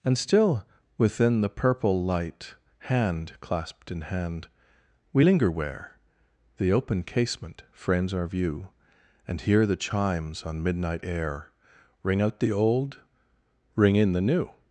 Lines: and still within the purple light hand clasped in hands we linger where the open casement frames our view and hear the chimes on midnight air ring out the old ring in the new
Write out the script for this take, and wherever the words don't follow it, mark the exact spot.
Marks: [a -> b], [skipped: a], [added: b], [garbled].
and still within the purple light hand clasped in [hands -> hand] we linger where the open casement frames our view and hear the chimes on midnight air ring out the old ring in the new